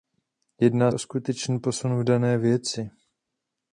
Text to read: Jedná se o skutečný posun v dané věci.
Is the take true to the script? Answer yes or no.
no